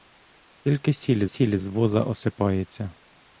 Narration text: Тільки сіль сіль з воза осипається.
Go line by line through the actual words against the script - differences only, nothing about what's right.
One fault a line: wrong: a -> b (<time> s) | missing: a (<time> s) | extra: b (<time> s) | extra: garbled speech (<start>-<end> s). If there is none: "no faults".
no faults